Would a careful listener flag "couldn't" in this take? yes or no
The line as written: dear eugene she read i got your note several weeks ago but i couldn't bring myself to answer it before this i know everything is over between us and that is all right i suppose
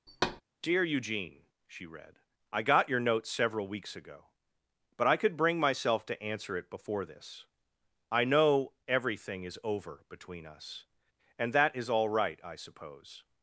yes